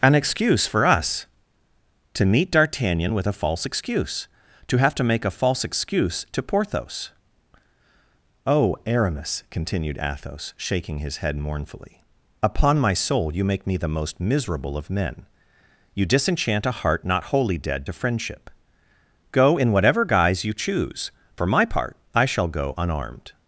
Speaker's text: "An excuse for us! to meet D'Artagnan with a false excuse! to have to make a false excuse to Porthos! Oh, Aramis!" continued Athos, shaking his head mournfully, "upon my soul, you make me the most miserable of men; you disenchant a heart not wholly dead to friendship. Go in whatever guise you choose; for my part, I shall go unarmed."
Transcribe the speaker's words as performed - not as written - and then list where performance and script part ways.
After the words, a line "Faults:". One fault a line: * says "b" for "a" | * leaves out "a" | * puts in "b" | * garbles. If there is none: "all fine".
"An excuse for us! to meet D'Artagnan with a false excuse! to have to make a false excuse to Porthos! Oh, Aramis!" continued Athos, shaking his head mournfully, "upon my soul, you make me the most miserable of men; you disenchant a heart not wholly dead to friendship. Go in whatever guise you choose; for my part, I shall go unarmed."
Faults:
all fine